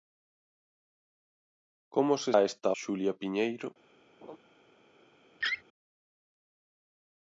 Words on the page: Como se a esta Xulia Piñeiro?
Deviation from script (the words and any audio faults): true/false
true